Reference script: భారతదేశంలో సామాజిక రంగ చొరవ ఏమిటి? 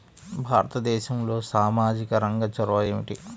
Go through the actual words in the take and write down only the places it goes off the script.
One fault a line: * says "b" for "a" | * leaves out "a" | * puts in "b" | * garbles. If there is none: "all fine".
all fine